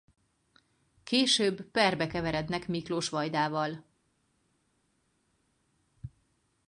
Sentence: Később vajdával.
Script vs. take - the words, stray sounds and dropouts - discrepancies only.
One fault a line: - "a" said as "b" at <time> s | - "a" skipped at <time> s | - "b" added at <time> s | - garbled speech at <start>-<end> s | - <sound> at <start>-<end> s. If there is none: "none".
- "perbe keverednek Miklós" added at 1.6 s